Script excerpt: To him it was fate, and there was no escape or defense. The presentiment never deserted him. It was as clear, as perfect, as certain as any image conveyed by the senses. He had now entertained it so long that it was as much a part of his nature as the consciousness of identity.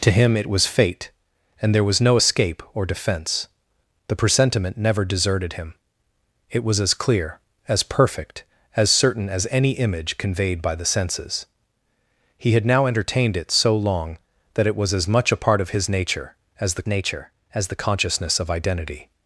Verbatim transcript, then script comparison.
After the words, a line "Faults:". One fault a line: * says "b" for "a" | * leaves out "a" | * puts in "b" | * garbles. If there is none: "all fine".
To him it was fate, and there was no escape or defense. The presentiment never deserted him. It was as clear, as perfect, as certain as any image conveyed by the senses. He had now entertained it so long that it was as much a part of his nature as the nature as the consciousness of identity.
Faults:
* puts in "nature as the"